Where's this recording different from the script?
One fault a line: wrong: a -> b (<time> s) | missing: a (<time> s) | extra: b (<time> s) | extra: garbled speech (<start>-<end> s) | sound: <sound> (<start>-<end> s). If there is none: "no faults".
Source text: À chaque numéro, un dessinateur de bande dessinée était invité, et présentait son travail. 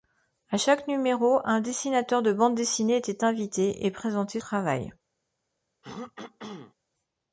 missing: son (4.4 s)
sound: throat clearing (5.8-6.7 s)